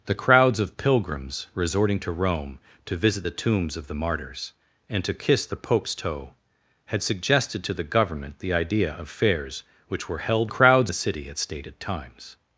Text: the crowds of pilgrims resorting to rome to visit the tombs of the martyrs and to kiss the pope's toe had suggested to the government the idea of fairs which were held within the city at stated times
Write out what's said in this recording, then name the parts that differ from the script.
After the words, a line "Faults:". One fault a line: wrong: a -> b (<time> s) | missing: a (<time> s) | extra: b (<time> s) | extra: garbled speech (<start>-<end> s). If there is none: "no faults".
the crowds of pilgrims resorting to rome to visit the tombs of the martyrs and to kiss the pope's toe had suggested to the government the idea of fairs which were held crowds the city at stated times
Faults:
wrong: within -> crowds (10.5 s)